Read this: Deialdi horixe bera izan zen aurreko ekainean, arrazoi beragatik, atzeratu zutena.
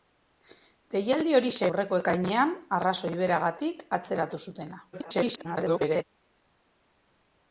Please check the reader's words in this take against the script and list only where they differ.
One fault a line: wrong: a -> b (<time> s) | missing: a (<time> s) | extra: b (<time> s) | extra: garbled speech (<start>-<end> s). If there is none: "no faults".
missing: bera izan zen (1.7 s)
extra: garbled speech (4.9-6.0 s)